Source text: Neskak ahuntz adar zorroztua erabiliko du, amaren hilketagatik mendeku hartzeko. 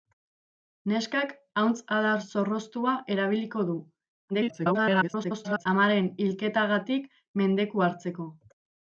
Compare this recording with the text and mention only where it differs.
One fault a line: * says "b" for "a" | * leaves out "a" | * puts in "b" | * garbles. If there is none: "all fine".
* garbles